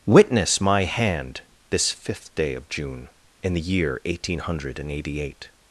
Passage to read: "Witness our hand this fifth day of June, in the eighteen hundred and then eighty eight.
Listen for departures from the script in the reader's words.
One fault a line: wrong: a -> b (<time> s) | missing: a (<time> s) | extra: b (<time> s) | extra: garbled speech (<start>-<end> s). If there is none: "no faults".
wrong: our -> my (0.6 s)
extra: year (3.6 s)
missing: then (4.9 s)